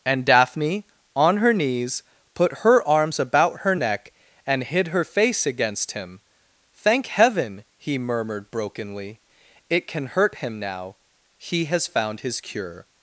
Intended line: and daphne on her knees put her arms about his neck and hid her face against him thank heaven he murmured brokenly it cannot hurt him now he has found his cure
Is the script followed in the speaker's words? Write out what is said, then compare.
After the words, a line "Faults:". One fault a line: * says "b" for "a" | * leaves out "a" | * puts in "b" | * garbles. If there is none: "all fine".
and daphne on her knees put her arms about her neck and hid her face against him thank heaven he murmured brokenly it can hurt him now he has found his cure
Faults:
* says "her" for "his"
* says "can" for "cannot"